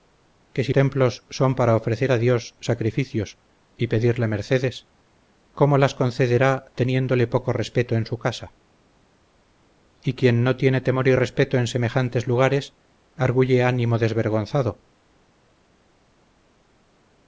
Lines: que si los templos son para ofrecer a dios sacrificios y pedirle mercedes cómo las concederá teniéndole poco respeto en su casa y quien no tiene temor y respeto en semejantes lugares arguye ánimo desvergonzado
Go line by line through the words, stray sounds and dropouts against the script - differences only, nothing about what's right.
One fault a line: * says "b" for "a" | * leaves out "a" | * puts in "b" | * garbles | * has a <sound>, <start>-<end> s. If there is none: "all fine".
* leaves out "los"